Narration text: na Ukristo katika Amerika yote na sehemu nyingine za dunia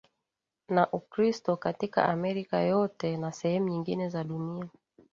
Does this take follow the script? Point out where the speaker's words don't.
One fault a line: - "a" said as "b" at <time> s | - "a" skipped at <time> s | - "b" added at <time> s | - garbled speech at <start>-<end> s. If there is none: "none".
none